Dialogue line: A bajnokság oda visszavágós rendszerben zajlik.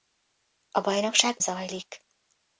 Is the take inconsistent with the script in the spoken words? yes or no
yes